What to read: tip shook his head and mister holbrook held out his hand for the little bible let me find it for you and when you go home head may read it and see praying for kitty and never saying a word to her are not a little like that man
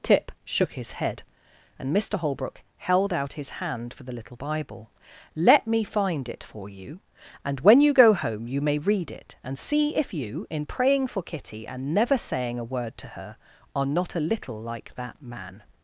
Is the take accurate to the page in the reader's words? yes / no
no